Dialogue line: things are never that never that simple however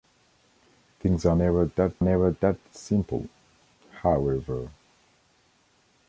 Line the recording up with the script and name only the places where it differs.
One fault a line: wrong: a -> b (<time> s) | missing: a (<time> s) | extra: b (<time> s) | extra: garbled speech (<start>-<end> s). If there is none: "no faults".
no faults